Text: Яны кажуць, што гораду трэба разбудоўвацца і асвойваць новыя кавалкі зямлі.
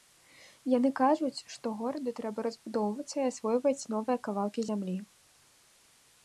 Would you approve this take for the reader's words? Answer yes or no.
yes